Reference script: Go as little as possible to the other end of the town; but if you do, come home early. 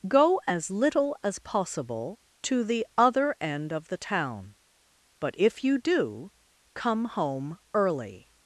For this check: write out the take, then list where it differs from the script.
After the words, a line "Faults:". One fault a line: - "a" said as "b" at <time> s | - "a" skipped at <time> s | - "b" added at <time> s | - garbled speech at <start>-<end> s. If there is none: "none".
Go as little as possible to the other end of the town; but if you do, come home early.
Faults:
none